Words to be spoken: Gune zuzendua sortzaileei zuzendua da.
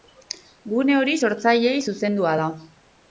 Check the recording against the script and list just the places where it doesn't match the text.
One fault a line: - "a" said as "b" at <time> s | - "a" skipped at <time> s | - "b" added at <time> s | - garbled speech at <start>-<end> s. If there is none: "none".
- "zuzendua" said as "hori" at 1.0 s